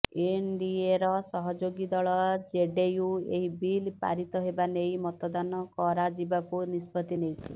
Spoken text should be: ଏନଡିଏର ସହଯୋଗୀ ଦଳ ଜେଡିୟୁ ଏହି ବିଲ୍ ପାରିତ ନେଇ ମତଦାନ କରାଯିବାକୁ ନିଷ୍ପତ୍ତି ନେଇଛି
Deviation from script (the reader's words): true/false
true